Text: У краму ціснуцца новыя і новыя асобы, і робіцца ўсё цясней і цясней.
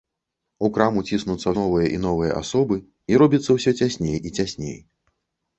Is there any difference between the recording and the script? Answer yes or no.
no